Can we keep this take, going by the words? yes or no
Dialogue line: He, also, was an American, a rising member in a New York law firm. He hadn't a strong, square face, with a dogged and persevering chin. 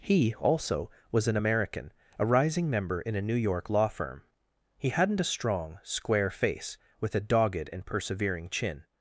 yes